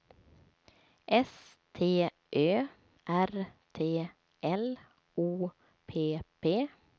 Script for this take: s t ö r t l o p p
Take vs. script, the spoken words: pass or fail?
pass